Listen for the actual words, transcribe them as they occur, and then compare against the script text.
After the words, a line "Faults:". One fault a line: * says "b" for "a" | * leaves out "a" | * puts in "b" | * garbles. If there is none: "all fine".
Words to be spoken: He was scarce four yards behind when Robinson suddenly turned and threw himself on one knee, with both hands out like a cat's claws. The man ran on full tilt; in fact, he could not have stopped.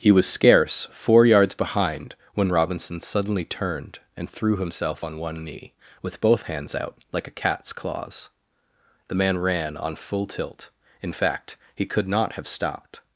He was scarce four yards behind when Robinson suddenly turned and threw himself on one knee, with both hands out like a cat's claws. The man ran on full tilt; in fact, he could not have stopped.
Faults:
all fine